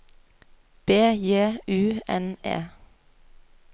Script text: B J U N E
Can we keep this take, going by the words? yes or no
yes